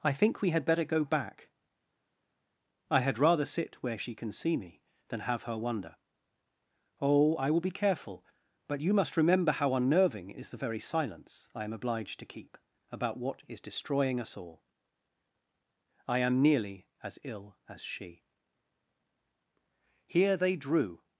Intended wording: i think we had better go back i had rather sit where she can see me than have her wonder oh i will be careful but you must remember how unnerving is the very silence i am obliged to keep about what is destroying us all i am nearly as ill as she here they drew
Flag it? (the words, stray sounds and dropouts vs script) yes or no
no